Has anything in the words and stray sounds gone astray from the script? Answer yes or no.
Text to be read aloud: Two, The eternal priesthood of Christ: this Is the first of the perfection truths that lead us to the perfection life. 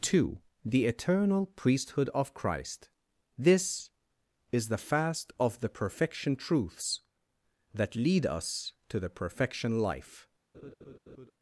yes